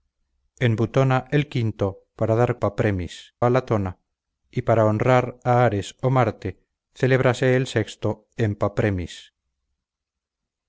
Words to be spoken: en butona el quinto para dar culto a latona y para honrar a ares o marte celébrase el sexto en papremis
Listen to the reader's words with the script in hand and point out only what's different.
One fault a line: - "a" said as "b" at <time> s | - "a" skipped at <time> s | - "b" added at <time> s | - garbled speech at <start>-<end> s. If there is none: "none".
- "culto" said as "papremis" at 2.6 s